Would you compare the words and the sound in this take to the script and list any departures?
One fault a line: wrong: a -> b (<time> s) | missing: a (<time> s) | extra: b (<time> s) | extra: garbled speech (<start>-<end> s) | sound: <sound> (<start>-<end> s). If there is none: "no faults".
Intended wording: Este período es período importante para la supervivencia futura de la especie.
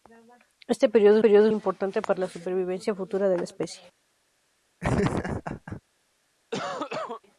sound: laugh (4.8-5.8 s)
sound: cough (6.5-7.2 s)